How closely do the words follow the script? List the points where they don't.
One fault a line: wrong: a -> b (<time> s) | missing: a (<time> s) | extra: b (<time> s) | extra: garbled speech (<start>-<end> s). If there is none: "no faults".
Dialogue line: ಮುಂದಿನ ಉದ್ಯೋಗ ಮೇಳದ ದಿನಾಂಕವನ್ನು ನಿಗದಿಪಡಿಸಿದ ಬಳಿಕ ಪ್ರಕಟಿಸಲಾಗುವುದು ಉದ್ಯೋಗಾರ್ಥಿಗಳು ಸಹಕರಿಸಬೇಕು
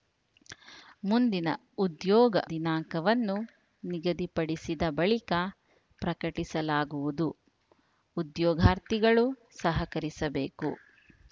missing: ಮೇಳದ (2.3 s)